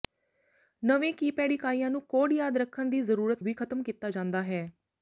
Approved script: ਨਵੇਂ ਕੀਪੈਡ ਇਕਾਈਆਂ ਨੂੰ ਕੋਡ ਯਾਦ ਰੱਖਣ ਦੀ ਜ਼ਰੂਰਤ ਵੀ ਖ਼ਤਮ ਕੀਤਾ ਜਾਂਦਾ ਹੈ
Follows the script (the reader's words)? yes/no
yes